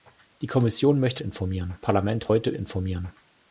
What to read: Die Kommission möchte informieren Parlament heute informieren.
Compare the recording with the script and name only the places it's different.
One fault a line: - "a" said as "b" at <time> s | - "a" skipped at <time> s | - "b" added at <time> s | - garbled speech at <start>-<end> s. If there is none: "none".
none